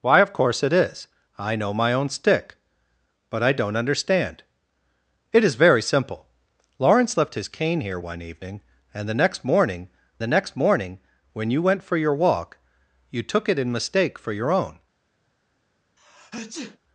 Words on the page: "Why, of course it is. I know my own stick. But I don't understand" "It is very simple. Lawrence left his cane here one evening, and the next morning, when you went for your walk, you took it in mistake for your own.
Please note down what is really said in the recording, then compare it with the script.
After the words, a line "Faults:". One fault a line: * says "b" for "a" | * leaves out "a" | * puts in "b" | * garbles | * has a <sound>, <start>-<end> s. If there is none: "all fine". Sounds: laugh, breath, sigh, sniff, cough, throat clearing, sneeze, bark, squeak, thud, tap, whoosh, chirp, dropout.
"Why, of course it is. I know my own stick. But I don't understand" "It is very simple. Lawrence left his cane here one evening, and the next morning the next morning, when you went for your walk, you took it in mistake for your own.
Faults:
* puts in "the next morning"
* has a sneeze, 16.0-16.8 s